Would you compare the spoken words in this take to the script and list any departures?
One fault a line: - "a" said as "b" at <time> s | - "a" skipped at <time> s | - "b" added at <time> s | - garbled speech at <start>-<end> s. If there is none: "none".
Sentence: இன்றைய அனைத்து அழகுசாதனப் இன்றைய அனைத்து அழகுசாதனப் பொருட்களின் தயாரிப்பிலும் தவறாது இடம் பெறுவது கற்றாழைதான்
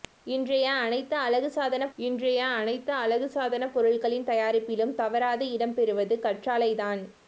none